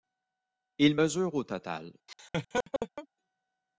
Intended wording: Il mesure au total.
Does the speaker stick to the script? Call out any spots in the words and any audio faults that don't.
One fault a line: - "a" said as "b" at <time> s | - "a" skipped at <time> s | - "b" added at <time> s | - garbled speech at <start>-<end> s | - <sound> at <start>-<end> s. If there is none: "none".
- laugh at 2.1-3.1 s